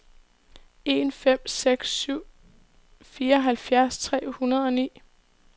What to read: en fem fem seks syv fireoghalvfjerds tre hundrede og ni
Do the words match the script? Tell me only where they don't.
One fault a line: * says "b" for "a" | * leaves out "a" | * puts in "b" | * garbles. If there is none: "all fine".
* leaves out "fem"